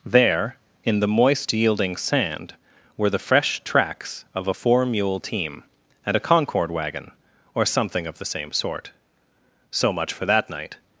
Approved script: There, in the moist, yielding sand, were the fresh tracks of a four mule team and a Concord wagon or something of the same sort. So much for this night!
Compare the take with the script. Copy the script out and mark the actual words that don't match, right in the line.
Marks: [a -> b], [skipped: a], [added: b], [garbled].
There, in the moist, yielding sand, were the fresh tracks of a four mule team and a Concord wagon or something of the same sort. So much for [this -> that] night!